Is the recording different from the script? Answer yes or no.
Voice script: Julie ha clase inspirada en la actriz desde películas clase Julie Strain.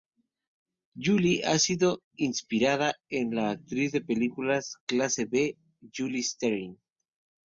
yes